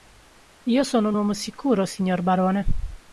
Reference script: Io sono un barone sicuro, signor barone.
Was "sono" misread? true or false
false